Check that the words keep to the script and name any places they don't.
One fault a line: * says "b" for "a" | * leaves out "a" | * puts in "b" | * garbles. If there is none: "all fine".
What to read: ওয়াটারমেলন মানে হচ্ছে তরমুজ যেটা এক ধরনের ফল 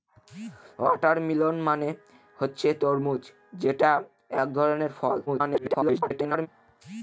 * garbles